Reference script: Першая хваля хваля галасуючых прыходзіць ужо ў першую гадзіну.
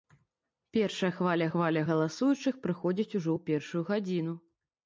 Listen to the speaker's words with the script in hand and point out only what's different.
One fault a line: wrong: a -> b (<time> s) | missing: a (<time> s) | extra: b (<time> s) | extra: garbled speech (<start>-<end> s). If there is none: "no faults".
no faults